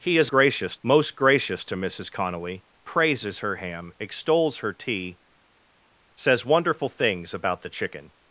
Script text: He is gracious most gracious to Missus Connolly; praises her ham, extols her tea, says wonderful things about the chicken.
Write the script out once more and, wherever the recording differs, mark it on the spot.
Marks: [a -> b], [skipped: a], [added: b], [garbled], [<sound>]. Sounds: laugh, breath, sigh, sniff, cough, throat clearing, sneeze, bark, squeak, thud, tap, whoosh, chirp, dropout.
He is gracious most gracious to Missus Connolly; praises her ham, extols her tea, says wonderful things about the chicken.